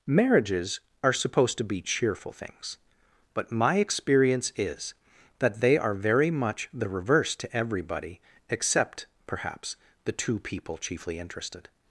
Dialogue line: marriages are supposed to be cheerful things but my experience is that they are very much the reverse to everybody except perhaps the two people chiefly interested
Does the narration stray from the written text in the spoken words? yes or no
no